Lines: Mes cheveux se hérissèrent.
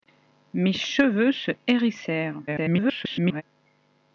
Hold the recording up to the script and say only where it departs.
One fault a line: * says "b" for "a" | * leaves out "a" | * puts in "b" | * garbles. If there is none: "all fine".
* garbles